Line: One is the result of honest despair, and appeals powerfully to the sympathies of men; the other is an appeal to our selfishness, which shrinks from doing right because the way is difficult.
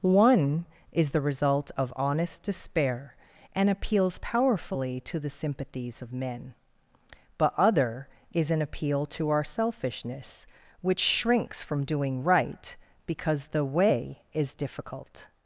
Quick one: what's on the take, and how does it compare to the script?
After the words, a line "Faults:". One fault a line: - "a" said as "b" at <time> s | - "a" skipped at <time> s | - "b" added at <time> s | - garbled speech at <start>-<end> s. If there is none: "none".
One is the result of honest despair, and appeals powerfully to the sympathies of men; but other is an appeal to our selfishness, which shrinks from doing right because the way is difficult.
Faults:
- "the" said as "but" at 7.4 s